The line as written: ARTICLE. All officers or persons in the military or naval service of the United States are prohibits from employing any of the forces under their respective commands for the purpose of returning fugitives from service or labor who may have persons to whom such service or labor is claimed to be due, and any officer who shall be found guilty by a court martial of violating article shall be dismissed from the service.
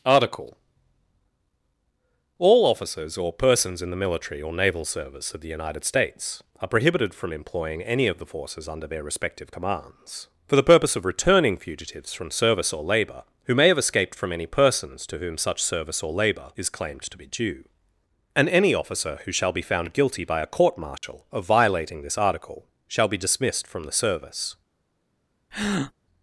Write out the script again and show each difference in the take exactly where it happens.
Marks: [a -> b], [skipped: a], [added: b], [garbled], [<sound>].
ARTICLE. All officers or persons in the military or naval service of the United States are [prohibits -> prohibited] from employing any of the forces under their respective commands for the purpose of returning fugitives from service or labor who may have [added: escaped from any] persons to whom such service or labor is claimed to be due, and any officer who shall be found guilty by a court martial [dropout] of violating [added: this] article shall be dismissed from the service. [breath]